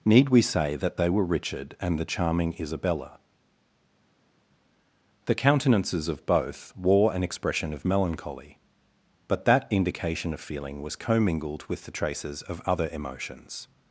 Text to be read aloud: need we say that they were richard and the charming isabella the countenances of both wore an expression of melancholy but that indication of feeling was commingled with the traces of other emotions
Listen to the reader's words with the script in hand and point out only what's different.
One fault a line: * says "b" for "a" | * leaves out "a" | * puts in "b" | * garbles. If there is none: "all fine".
all fine